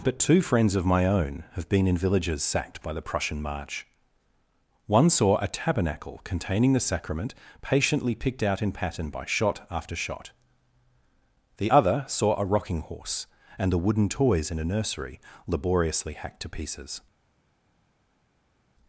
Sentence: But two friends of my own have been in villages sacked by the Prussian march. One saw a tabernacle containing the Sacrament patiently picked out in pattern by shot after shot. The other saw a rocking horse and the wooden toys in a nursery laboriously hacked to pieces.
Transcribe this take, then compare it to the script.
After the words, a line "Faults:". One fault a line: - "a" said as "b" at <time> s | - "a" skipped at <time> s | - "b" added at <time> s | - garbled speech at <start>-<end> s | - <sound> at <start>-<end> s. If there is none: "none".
But two friends of my own have been in villages sacked by the Prussian march. One saw a tabernacle containing the Sacrament patiently picked out in pattern by shot after shot. The other saw a rocking horse and the wooden toys in a nursery laboriously hacked to pieces.
Faults:
none